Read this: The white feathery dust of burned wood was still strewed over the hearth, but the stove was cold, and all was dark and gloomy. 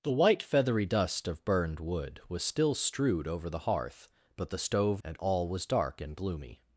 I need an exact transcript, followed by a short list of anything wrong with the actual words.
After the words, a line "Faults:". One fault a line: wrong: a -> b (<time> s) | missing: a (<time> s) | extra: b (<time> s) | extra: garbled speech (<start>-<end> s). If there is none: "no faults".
The white feathery dust of burned wood was still strewed over the hearth, but the stove and all was dark and gloomy.
Faults:
missing: was cold (5.0 s)